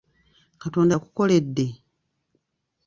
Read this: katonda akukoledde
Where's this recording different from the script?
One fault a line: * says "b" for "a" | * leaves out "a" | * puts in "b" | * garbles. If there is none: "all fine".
all fine